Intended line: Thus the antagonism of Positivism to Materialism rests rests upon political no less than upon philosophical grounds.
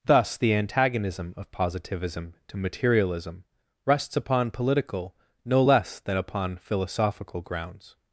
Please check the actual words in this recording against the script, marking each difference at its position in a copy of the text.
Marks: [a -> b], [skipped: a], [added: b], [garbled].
Thus the antagonism of Positivism to Materialism rests [skipped: rests] upon political no less than upon philosophical grounds.